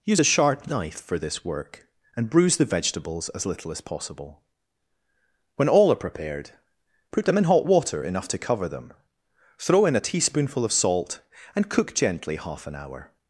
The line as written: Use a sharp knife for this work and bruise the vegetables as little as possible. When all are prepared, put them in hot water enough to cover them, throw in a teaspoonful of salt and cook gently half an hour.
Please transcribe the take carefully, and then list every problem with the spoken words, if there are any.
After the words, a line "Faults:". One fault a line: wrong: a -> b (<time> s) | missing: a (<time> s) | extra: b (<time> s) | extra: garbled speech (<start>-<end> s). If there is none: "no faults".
Use a sharp knife for this work and bruise the vegetables as little as possible. When all are prepared, put them in hot water enough to cover them, throw in a teaspoonful of salt and cook gently half an hour.
Faults:
no faults